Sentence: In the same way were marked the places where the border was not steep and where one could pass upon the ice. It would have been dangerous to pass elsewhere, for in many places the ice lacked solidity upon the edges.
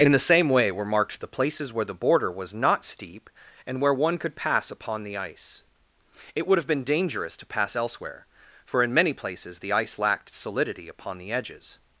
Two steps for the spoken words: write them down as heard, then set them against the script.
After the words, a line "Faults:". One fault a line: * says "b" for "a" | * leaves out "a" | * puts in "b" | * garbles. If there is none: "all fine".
In the same way were marked the places where the border was not steep and where one could pass upon the ice. It would have been dangerous to pass elsewhere, for in many places the ice lacked solidity upon the edges.
Faults:
all fine